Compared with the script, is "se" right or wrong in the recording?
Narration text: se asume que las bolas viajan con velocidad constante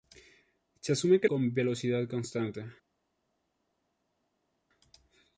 right